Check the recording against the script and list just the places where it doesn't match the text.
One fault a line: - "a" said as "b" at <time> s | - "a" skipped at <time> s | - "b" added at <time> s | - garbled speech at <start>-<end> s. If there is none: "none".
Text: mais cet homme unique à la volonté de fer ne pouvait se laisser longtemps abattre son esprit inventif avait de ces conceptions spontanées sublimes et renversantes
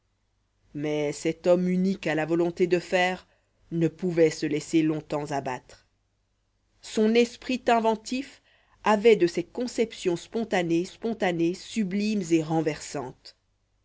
- "spontanées" added at 10.8 s